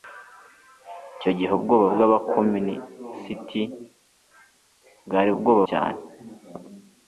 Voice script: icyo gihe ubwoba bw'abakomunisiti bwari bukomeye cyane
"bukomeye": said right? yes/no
no